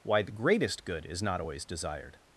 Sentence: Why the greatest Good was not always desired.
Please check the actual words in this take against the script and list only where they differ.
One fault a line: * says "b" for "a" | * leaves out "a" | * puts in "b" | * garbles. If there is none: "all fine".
* says "is" for "was"